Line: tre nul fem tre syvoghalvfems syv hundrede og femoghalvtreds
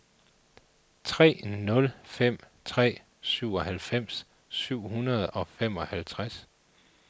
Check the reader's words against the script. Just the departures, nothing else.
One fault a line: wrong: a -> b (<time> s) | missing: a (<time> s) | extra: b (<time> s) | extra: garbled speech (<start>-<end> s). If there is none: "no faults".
no faults